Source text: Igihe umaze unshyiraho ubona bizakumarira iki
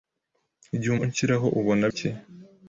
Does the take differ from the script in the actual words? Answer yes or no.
yes